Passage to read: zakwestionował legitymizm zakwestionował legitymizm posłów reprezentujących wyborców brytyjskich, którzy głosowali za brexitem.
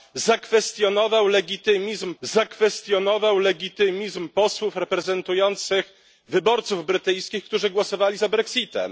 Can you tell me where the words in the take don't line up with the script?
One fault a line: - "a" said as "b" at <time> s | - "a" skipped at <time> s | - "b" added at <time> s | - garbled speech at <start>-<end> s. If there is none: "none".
none